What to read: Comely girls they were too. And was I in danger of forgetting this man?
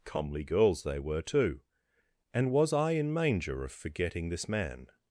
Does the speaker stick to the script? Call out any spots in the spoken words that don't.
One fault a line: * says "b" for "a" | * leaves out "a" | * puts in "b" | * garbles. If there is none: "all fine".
* says "manger" for "danger"